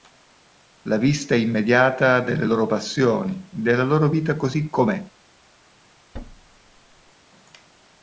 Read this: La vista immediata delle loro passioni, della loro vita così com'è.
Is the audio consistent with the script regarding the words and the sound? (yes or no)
no